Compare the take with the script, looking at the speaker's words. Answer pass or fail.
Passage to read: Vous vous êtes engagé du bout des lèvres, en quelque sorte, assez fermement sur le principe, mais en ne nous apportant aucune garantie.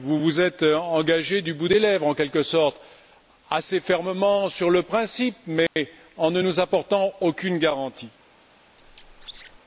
pass